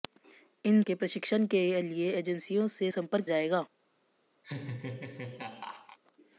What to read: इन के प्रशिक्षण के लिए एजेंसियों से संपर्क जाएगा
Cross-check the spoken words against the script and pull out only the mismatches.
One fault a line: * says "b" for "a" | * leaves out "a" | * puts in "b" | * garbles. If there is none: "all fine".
all fine